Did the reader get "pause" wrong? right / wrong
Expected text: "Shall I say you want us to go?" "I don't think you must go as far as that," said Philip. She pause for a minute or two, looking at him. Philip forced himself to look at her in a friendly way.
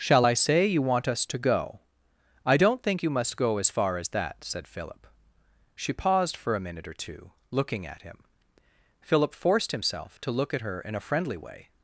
wrong